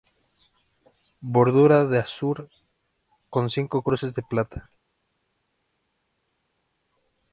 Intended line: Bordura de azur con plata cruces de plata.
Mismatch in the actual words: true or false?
true